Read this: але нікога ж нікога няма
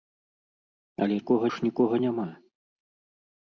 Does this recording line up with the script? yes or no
yes